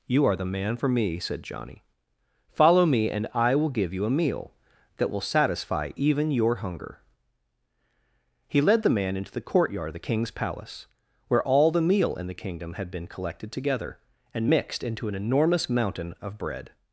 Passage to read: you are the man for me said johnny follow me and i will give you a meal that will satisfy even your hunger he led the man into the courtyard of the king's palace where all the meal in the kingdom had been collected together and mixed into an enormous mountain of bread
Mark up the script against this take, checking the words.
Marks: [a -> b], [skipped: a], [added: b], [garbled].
you are the man for me said johnny follow me and i will give you a meal that will satisfy even your hunger he led the man into the courtyard of the king's palace where all the meal in the kingdom had been collected together and mixed into an enormous mountain of bread